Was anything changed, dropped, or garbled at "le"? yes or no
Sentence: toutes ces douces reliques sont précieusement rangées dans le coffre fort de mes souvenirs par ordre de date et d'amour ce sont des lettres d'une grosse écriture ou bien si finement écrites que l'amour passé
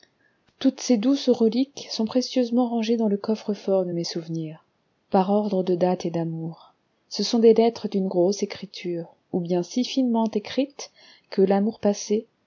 no